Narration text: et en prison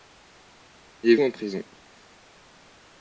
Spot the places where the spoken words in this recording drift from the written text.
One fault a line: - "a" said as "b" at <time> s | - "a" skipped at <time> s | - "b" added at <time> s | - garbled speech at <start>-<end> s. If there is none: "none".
none